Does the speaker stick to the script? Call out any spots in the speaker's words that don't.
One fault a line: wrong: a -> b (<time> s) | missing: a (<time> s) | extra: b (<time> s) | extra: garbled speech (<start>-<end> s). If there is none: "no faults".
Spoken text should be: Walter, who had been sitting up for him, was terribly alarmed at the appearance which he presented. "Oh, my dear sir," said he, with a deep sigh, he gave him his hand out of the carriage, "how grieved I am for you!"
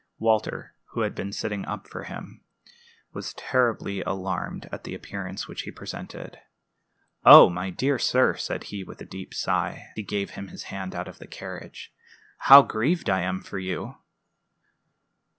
no faults